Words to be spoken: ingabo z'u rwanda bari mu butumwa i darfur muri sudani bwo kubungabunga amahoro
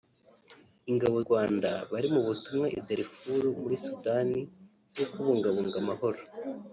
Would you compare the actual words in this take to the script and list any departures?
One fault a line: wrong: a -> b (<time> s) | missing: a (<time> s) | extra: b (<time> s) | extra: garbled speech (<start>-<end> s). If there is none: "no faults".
missing: z'u (1.2 s)